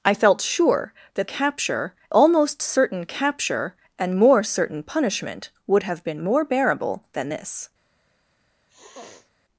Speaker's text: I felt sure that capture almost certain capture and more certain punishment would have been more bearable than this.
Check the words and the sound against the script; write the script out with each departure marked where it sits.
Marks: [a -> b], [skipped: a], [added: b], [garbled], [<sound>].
I felt sure that capture almost certain capture and more certain punishment would have been more bearable than this. [sniff]